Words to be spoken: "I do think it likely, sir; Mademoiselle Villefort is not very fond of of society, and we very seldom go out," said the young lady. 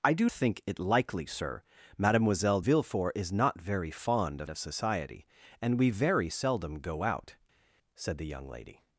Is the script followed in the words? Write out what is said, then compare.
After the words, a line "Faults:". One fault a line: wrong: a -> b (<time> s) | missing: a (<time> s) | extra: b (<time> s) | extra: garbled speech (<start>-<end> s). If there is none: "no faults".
"I do think it likely, sir; Mademoiselle Villefort is not very fond of of society, and we very seldom go out," said the young lady.
Faults:
no faults